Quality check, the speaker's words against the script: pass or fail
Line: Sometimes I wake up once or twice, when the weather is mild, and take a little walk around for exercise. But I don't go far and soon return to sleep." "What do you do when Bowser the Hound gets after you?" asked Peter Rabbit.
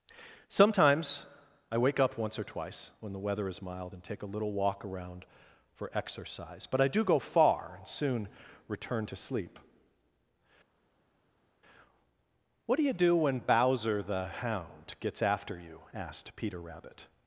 fail